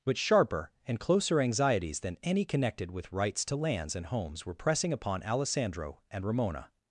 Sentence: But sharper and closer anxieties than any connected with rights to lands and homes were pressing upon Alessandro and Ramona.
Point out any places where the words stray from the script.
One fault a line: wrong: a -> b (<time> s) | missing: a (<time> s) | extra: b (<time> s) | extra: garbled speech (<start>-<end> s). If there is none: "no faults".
no faults